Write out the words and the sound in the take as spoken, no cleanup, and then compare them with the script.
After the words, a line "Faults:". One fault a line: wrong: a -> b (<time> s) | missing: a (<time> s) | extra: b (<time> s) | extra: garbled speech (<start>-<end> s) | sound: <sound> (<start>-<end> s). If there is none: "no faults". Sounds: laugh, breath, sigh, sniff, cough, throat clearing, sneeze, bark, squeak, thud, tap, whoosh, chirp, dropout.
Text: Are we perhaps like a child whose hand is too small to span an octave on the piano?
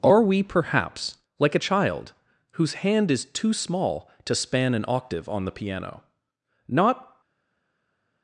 Are we perhaps like a child whose hand is too small to span an octave on the piano? Not
Faults:
extra: Not (6.7 s)